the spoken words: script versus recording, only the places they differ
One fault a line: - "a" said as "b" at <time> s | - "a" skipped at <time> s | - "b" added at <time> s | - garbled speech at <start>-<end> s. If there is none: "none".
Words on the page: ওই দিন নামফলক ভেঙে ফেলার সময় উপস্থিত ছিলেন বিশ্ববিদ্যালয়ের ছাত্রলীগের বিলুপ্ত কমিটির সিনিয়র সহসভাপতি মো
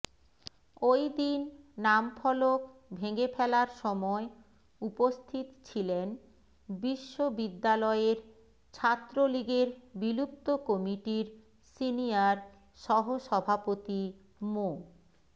none